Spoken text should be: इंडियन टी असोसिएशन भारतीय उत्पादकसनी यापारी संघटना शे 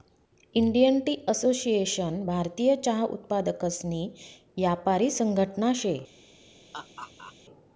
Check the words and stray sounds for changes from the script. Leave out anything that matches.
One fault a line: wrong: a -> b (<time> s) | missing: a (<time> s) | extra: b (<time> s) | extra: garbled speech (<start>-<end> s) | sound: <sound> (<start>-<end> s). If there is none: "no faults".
extra: चहा (2.8 s)
sound: laugh (6.7-7.3 s)